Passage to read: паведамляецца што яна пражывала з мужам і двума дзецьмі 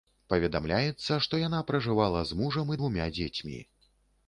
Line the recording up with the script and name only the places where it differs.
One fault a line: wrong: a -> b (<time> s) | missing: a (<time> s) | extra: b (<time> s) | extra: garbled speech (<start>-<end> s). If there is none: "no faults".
no faults